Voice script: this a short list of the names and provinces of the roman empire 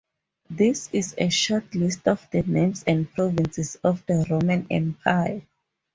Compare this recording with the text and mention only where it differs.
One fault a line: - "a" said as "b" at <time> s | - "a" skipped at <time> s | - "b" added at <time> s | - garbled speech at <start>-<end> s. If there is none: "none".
- "is" added at 0.9 s